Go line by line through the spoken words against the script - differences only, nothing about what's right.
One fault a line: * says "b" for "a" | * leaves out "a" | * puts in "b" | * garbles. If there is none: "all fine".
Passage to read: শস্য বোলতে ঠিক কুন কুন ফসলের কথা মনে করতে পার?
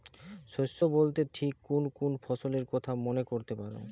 all fine